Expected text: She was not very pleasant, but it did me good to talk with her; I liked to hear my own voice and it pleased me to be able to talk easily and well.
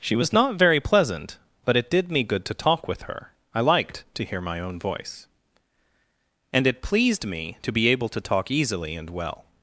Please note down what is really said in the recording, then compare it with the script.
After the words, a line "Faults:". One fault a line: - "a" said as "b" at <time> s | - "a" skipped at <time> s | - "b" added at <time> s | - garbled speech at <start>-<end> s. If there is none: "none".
She was not very pleasant, but it did me good to talk with her; I liked to hear my own voice and it pleased me to be able to talk easily and well.
Faults:
none